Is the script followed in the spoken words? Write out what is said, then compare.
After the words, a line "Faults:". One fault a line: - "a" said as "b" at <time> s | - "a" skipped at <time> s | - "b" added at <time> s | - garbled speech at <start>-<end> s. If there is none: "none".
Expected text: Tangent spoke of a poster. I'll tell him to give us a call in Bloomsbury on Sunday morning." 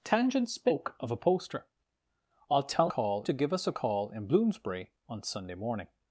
Tangent spoke of a poster. I'll tell call to give us a call in Bloomsbury on Sunday morning."
Faults:
- "him" said as "call" at 2.9 s